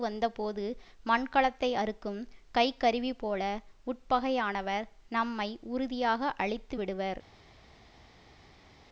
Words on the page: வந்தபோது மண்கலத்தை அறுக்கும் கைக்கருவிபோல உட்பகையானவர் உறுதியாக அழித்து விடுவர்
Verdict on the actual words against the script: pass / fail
fail